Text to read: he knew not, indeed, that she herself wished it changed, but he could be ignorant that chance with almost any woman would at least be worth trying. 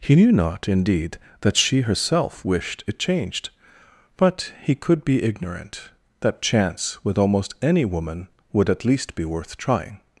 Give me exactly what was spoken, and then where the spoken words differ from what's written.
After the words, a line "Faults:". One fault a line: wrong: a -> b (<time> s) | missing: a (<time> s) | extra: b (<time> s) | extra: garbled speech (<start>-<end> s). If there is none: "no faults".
he knew not, indeed, that she herself wished it changed, but he could be ignorant that chance with almost any woman would at least be worth trying.
Faults:
no faults